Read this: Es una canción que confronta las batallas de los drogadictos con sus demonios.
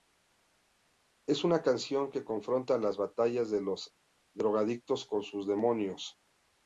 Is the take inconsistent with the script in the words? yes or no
no